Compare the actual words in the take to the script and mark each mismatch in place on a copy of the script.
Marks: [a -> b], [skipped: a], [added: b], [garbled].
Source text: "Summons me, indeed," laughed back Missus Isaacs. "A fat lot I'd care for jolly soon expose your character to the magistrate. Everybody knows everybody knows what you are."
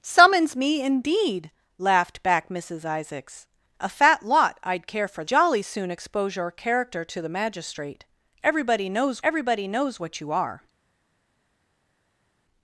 "Summons me, indeed," laughed back Missus Isaacs. "A fat lot I'd care for jolly soon expose your character to the magistrate. Everybody knows everybody knows what you are."